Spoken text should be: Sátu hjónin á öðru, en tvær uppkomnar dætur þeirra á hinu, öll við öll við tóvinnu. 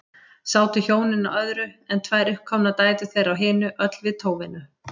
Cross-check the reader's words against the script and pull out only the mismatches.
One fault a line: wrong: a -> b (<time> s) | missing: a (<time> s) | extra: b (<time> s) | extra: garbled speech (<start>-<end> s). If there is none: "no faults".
missing: öll við (4.2 s)